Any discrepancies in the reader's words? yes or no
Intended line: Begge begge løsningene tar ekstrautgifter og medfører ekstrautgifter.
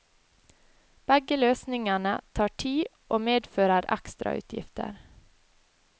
yes